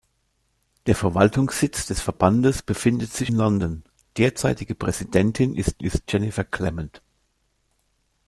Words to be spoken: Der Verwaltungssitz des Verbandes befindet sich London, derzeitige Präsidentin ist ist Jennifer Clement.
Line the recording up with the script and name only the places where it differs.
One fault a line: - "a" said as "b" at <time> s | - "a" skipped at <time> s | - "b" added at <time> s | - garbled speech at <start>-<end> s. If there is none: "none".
none